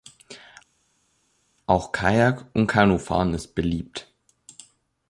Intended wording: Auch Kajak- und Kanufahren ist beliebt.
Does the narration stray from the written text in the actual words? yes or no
no